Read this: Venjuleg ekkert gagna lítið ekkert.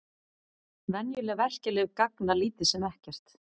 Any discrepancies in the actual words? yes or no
yes